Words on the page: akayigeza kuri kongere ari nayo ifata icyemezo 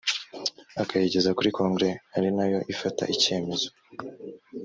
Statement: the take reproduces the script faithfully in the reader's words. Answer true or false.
true